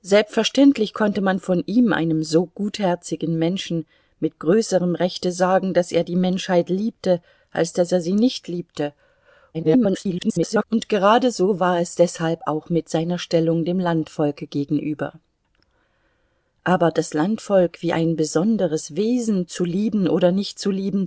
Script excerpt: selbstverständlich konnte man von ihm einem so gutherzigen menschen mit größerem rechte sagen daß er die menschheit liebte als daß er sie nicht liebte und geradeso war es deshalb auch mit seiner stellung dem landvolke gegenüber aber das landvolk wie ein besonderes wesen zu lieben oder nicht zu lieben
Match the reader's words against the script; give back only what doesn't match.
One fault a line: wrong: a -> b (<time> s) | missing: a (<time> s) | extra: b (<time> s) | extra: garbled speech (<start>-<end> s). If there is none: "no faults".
extra: garbled speech (9.5-10.6 s)